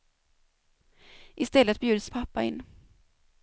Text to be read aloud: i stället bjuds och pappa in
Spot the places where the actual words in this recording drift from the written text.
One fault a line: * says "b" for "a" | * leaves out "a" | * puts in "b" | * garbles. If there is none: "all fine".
all fine